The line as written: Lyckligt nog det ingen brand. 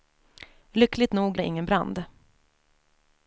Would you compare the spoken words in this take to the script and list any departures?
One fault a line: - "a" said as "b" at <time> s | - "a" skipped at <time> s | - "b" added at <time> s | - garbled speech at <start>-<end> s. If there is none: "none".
none